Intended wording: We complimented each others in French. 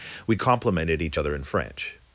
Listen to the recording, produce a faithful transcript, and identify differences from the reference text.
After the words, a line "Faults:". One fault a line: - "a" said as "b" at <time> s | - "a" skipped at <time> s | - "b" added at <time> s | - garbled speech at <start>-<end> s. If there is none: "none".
We complimented each other in French.
Faults:
- "others" said as "other" at 1.2 s